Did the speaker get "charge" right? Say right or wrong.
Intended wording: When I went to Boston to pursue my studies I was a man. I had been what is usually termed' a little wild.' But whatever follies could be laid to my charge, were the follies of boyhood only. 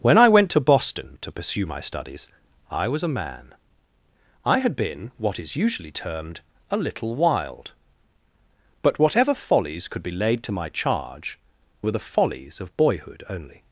right